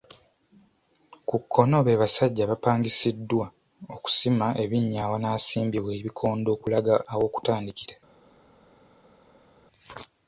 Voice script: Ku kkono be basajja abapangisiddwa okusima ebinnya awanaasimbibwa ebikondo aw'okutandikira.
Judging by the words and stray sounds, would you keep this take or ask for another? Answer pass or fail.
fail